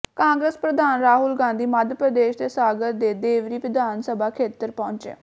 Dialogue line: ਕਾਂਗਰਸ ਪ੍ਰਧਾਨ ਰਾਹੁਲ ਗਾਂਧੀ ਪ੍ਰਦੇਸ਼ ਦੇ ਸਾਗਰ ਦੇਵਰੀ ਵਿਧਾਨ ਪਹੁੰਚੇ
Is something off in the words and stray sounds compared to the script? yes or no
yes